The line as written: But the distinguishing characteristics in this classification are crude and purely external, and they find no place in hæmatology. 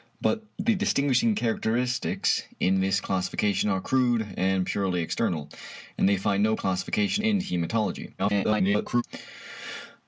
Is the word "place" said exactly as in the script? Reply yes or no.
no